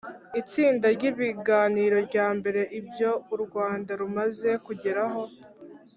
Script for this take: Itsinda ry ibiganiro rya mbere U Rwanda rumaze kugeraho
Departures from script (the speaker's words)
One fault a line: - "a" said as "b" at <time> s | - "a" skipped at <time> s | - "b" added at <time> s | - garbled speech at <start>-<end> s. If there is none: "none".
- "Ibyo" added at 2.8 s